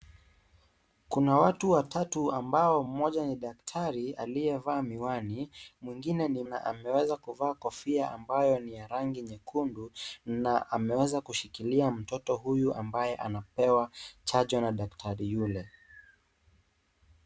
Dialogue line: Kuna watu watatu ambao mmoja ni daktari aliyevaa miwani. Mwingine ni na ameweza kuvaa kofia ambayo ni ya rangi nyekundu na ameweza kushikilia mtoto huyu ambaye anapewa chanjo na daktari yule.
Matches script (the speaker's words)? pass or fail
pass